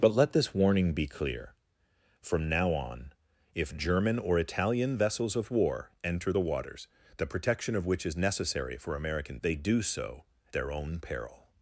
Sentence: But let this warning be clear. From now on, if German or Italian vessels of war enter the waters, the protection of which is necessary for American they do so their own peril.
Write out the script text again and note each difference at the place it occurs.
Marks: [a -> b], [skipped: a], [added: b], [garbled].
But let this warning be clear. From now on, if German or Italian vessels of war enter the waters, the protection of which is necessary for American they do so their own peril.